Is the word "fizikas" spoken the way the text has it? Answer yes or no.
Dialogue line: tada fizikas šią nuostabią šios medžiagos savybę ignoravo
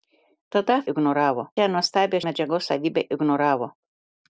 no